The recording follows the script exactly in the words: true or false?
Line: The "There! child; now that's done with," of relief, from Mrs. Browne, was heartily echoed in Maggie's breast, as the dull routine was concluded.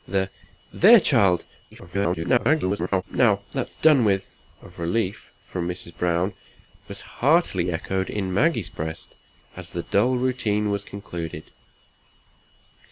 false